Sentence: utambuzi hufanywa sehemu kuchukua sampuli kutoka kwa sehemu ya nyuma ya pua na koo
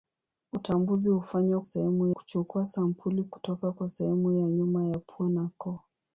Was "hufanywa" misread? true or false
false